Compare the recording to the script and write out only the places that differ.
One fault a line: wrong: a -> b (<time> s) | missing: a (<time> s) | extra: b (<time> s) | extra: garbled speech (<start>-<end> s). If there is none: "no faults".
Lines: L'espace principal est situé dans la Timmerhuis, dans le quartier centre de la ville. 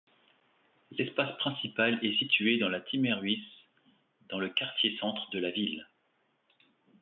no faults